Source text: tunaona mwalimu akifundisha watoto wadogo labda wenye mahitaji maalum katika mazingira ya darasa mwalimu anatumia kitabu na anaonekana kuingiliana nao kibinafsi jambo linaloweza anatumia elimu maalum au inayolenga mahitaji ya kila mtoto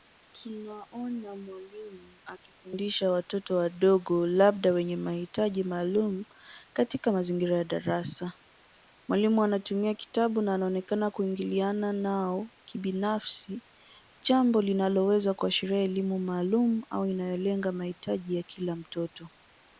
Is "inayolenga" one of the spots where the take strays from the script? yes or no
no